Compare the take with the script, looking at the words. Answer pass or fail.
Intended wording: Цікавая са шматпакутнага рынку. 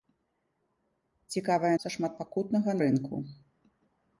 pass